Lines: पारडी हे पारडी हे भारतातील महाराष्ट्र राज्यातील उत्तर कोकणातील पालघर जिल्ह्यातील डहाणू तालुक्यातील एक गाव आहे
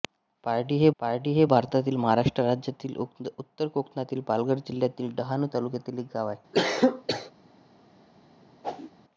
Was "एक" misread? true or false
false